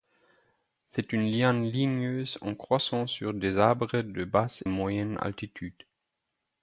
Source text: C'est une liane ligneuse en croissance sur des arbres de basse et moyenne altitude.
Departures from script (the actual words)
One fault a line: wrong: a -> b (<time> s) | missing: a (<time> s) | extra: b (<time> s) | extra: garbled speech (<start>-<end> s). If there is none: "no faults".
missing: et (4.6 s)